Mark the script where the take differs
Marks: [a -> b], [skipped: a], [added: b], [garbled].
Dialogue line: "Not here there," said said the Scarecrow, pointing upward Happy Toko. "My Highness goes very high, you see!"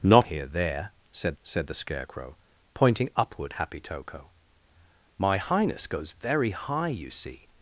"Not here there," said said the Scarecrow, pointing upward Happy Toko. "My Highness goes very high, you see!"